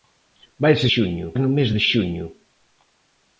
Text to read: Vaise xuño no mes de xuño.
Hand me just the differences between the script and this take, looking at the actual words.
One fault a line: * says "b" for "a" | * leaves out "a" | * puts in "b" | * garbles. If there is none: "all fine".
all fine